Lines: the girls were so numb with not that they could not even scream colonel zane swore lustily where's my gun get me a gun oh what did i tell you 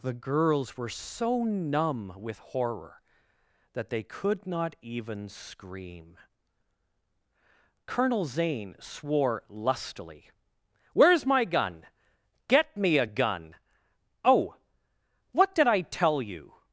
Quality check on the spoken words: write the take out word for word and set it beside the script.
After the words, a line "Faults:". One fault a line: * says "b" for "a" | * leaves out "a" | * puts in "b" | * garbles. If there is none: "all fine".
the girls were so numb with horror that they could not even scream colonel zane swore lustily where's my gun get me a gun oh what did i tell you
Faults:
* says "horror" for "not"